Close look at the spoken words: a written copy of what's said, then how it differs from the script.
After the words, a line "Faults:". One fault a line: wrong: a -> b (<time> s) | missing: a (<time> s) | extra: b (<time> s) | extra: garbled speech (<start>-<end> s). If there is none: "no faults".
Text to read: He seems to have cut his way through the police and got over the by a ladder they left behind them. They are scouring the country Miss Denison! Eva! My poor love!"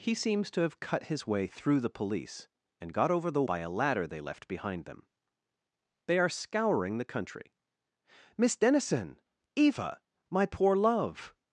He seems to have cut his way through the police and got over the by a ladder they left behind them. They are scouring the country Miss Denison! Eva! My poor love!"
Faults:
no faults